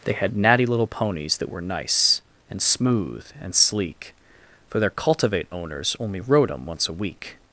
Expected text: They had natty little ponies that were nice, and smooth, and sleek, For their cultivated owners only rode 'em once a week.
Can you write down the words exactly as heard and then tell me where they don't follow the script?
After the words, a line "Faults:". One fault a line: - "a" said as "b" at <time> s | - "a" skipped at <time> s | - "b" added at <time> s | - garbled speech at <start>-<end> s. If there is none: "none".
They had natty little ponies that were nice, and smooth, and sleek, For their cultivate owners only rode 'em once a week.
Faults:
- "cultivated" said as "cultivate" at 4.9 s